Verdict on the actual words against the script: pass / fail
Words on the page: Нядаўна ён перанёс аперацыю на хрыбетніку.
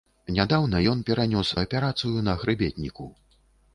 pass